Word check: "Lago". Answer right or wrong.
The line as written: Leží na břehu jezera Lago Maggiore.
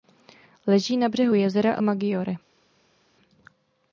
wrong